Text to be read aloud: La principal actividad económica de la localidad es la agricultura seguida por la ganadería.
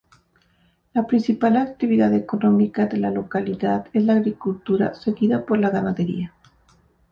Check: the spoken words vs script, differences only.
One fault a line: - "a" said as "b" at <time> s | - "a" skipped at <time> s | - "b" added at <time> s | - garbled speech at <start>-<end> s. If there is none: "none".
none